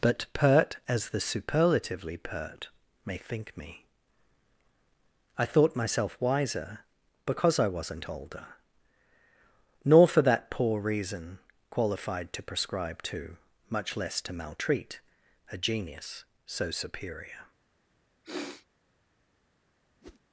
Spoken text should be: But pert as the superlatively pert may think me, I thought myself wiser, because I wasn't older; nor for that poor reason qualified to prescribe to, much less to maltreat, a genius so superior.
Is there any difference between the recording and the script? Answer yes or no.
no